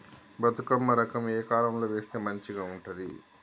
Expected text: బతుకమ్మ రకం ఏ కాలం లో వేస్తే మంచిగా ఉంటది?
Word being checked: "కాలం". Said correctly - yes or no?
yes